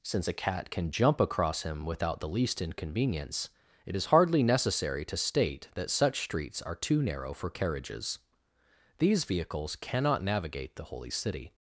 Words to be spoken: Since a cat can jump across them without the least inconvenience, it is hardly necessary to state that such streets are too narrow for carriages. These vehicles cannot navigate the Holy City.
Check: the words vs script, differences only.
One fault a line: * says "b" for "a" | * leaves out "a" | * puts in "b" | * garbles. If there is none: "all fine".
* says "him" for "them"